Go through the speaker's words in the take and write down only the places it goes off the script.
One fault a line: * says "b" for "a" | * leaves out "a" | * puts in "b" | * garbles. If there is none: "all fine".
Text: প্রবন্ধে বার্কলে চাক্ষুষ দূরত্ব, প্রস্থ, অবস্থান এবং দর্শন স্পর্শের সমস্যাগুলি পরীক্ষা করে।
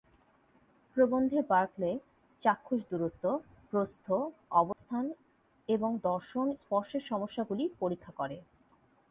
all fine